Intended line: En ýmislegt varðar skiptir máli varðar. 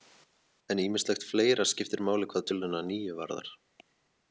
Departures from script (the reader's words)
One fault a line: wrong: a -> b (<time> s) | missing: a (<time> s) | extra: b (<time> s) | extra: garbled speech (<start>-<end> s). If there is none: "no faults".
wrong: varðar -> fleira (1.3 s)
extra: hvað töluna níu (2.3 s)